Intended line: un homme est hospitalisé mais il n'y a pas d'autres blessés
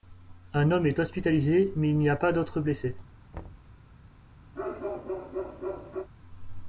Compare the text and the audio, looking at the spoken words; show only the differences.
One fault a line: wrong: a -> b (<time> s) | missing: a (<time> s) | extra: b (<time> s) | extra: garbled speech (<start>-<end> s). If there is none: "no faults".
no faults